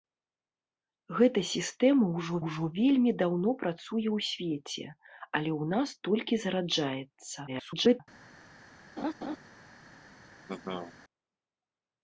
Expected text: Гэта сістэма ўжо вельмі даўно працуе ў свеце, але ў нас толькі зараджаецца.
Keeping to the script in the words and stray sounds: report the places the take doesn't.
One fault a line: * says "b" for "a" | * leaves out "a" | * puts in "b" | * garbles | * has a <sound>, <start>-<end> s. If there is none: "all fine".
* puts in "ўжо"
* garbles
* has a laugh, 9.0-9.4 s
* has a laugh, 10.5-10.9 s